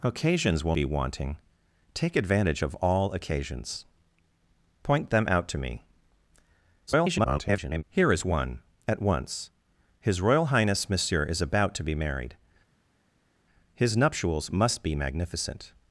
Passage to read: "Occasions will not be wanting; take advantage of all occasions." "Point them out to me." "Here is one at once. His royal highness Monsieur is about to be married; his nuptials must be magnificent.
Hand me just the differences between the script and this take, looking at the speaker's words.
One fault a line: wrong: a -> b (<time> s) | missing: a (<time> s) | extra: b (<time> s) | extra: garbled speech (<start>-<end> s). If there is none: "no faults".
missing: not (0.8 s)
extra: garbled speech (6.9-7.8 s)